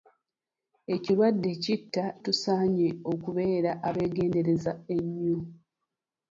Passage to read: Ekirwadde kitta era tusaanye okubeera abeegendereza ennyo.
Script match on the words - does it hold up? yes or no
no